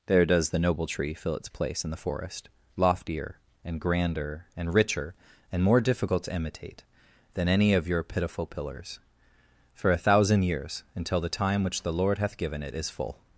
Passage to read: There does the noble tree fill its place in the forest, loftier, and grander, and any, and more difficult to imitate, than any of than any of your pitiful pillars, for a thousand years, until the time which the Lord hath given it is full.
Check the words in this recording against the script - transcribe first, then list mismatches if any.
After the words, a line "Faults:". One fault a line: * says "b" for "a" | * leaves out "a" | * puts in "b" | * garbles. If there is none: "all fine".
There does the noble tree fill its place in the forest, loftier, and grander, and richer, and more difficult to imitate, than any of your pitiful pillars, for a thousand years, until the time which the Lord hath given it is full.
Faults:
* says "richer" for "any"
* leaves out "than any of"